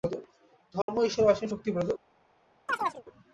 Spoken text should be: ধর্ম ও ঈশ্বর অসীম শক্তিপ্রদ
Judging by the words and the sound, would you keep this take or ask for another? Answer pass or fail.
fail